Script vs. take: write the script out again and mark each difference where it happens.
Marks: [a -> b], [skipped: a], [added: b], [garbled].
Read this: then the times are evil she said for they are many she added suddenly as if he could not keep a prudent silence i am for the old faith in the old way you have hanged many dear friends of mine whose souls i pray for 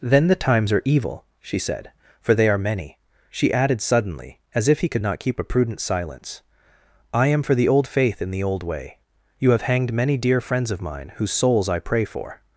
then the times are evil she said for they are many she added suddenly as if he could not keep a prudent silence i am for the old faith in the old way you have hanged many dear friends of mine whose souls i pray for